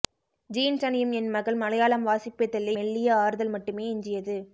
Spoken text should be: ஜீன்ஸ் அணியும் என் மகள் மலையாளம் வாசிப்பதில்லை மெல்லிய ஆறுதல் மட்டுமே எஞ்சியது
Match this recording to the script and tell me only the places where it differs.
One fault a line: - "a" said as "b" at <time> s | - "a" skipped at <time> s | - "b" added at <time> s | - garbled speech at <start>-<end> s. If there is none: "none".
none